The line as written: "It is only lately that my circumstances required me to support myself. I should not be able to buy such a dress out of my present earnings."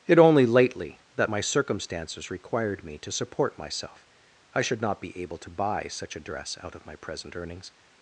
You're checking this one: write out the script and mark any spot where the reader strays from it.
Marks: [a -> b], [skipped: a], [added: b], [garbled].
"It [skipped: is] only lately that my circumstances required me to support myself. I should not be able to buy such a dress out of my present earnings."